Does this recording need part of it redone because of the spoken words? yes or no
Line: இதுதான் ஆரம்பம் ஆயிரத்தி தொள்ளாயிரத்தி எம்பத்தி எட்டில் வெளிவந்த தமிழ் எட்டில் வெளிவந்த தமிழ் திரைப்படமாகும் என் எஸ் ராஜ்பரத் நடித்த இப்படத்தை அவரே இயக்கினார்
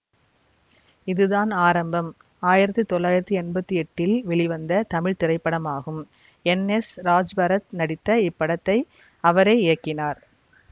yes